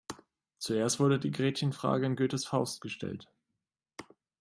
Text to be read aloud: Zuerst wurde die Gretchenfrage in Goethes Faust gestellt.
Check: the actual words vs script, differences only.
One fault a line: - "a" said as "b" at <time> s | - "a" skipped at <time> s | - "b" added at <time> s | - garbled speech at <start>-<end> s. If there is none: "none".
none